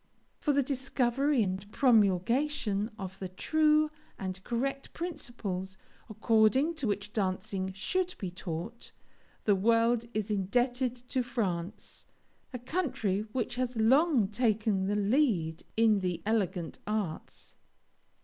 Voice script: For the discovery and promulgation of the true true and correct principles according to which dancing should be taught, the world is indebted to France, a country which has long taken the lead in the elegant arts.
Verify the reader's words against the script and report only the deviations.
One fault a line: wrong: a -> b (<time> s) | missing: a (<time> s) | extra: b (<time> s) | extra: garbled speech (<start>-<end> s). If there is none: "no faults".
missing: true (3.9 s)